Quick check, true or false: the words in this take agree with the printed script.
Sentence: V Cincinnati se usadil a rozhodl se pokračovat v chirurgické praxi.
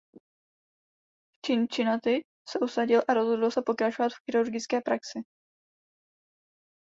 true